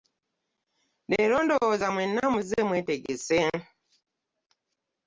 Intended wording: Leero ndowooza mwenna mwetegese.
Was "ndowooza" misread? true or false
false